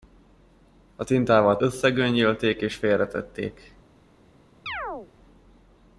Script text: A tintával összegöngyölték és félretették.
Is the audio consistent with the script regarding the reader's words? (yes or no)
yes